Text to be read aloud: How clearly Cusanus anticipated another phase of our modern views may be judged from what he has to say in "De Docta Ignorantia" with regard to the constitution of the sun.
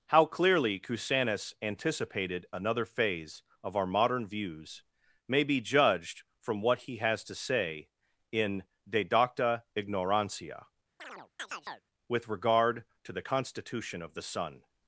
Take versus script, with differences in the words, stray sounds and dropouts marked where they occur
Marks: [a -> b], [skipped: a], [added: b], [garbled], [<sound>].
How clearly Cusanus anticipated another phase of our modern views may be judged from what he has to say in "De Docta Ignorantia" [chirp] with regard to the constitution of the sun.